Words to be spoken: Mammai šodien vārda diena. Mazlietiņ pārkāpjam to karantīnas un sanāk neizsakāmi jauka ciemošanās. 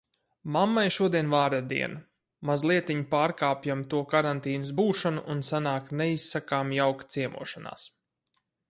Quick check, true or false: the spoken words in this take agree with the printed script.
false